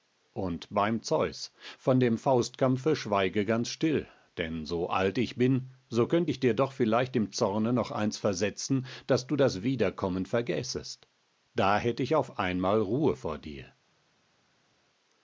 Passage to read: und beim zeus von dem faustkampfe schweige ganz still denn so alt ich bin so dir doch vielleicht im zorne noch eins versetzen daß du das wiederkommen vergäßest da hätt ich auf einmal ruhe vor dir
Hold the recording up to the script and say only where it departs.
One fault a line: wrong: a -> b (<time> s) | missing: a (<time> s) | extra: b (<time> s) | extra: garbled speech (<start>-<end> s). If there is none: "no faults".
extra: könnt ich (6.1 s)